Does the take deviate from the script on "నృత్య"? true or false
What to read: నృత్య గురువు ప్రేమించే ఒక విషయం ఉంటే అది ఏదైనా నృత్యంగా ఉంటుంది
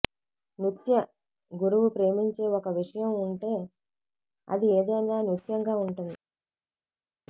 false